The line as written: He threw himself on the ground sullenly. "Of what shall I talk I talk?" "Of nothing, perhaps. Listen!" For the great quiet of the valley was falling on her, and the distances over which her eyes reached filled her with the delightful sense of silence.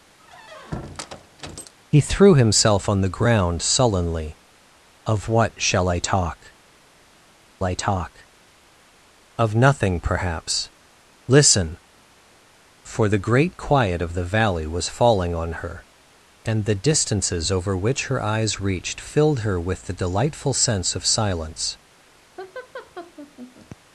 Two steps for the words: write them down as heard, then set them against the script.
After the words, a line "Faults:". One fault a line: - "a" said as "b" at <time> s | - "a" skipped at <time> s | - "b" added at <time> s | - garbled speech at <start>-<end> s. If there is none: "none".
He threw himself on the ground sullenly. "Of what shall I talk I talk?" "Of nothing, perhaps. Listen!" For the great quiet of the valley was falling on her, and the distances over which her eyes reached filled her with the delightful sense of silence.
Faults:
none